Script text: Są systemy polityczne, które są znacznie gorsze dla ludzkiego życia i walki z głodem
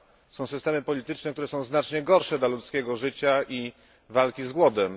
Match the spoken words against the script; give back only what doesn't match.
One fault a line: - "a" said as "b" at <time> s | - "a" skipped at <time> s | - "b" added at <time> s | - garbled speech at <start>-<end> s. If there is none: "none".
none